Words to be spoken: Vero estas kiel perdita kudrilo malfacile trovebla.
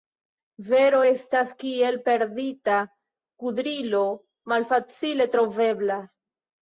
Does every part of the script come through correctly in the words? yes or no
yes